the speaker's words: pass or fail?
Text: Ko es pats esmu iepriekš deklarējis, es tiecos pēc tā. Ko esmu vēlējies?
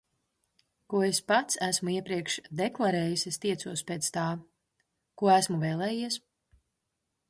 pass